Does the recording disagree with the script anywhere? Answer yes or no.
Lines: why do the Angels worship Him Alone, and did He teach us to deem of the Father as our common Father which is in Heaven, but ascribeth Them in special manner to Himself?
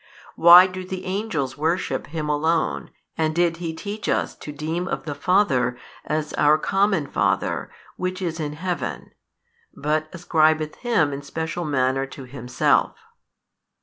yes